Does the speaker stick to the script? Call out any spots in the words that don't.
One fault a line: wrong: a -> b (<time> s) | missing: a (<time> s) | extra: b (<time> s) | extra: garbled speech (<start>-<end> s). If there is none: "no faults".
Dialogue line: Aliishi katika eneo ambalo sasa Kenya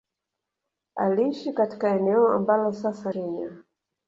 no faults